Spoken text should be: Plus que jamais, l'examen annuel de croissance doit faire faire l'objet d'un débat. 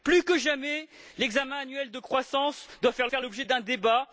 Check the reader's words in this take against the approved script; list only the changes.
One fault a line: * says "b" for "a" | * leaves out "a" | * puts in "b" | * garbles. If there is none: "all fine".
all fine